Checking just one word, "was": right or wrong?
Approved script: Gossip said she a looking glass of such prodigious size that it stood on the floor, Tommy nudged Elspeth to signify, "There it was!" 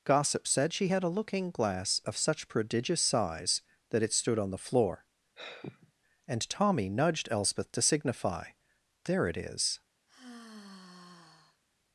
wrong